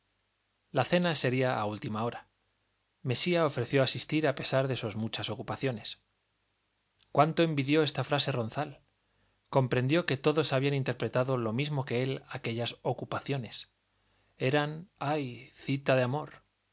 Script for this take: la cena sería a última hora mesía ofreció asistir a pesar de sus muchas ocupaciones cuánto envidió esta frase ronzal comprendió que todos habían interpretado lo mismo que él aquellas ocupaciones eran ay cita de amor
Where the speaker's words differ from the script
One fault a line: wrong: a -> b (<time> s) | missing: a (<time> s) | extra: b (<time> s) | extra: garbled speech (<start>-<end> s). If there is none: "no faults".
no faults